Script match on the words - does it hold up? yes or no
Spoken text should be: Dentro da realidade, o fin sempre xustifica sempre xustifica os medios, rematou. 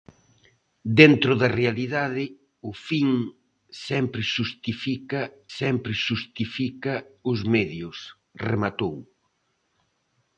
yes